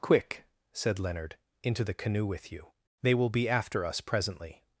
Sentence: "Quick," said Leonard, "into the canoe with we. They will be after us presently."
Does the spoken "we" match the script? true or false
false